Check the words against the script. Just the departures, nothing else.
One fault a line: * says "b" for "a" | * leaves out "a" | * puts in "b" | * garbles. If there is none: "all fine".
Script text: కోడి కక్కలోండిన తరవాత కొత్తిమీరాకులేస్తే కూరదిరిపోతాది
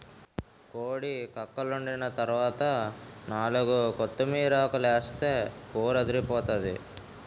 * puts in "నాలుగు"